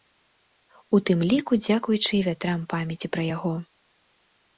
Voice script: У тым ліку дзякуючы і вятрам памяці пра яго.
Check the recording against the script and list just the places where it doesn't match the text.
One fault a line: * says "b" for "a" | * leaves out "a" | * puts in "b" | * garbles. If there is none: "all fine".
all fine